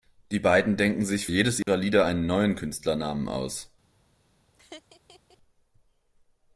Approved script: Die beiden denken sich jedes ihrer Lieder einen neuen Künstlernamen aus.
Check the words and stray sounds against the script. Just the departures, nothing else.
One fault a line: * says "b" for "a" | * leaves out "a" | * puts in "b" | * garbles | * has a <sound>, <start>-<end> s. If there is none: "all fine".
* has a dropout, 1.6-1.7 s
* has a laugh, 4.5-5.4 s